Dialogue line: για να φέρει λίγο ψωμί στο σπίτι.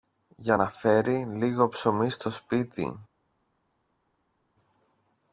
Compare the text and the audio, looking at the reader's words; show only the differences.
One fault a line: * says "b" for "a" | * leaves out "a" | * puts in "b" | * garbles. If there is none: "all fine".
all fine